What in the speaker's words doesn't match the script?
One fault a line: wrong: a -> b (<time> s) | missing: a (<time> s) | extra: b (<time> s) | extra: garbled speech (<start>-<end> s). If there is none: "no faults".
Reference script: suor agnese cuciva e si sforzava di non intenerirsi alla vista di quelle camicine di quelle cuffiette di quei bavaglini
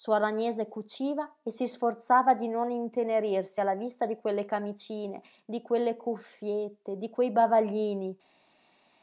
no faults